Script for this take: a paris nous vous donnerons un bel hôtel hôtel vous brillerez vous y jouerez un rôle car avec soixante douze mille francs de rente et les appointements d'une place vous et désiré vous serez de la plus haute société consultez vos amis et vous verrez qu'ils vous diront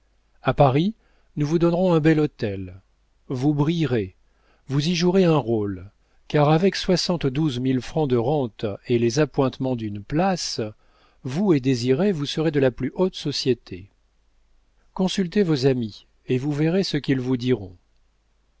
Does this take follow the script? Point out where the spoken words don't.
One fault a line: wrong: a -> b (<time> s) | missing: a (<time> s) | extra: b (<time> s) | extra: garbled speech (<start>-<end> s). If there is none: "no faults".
missing: hôtel (2.8 s)
extra: ce (16.8 s)